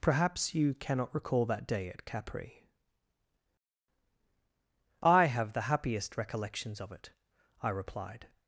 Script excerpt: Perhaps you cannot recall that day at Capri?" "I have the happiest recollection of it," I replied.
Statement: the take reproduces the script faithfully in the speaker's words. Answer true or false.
false